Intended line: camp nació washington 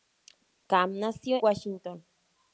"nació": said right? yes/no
yes